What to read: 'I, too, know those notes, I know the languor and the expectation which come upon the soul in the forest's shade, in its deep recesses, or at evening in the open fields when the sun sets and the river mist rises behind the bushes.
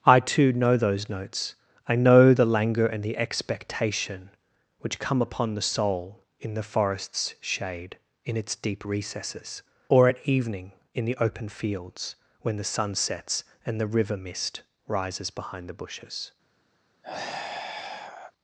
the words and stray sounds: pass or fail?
fail